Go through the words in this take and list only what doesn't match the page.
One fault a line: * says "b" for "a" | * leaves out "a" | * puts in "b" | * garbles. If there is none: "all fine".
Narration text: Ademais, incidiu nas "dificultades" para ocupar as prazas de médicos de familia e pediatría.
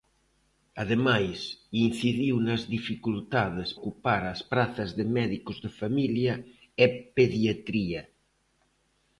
* leaves out "para"